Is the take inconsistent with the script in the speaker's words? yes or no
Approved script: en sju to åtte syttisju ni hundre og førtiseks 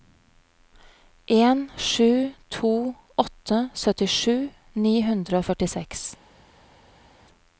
no